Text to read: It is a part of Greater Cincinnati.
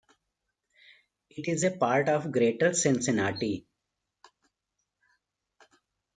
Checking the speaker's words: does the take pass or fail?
pass